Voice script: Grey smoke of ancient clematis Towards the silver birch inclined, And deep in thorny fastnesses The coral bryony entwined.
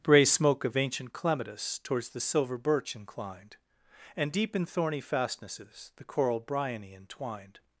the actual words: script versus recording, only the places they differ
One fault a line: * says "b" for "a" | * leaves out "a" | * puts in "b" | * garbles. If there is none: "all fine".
* says "Bray" for "Grey"